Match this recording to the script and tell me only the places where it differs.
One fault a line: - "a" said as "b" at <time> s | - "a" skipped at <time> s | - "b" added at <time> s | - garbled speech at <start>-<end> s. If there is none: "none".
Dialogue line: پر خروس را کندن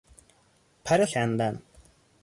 - "خروس را" skipped at 1.1 s